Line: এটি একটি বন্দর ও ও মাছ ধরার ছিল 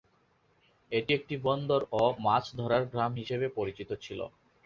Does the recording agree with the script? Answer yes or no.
no